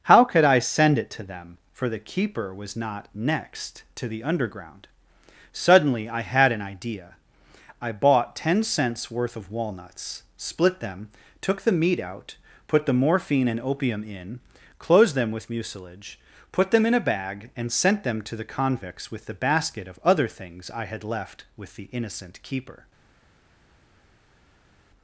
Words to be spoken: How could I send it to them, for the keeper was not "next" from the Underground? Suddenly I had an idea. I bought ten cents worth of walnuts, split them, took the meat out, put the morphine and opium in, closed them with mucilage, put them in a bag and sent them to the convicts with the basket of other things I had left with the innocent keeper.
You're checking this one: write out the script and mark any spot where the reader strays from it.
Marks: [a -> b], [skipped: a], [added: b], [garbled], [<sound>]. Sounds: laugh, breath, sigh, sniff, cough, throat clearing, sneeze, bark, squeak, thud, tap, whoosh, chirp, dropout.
How could I send it to them, for the keeper was not "next" [from -> to] the Underground? Suddenly I had an idea. I bought ten cents worth of walnuts, split them, took the meat out, put the morphine and opium in, closed them with mucilage, put them in a bag and sent them to the convicts with the basket of other things I had left with the innocent keeper.